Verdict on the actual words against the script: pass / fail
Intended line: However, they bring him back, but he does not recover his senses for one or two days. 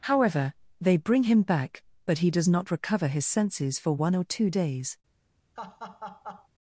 pass